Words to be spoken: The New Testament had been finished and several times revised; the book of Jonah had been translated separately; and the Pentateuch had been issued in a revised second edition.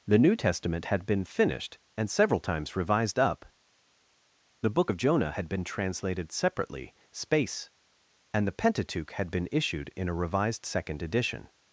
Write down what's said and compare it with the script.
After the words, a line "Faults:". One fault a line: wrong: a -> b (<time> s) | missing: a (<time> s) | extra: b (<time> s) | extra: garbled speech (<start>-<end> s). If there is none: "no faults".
The New Testament had been finished and several times revised; up the book of Jonah had been translated separately; space and the Pentateuch had been issued in a revised second edition.
Faults:
extra: up (3.2 s)
extra: space (7.1 s)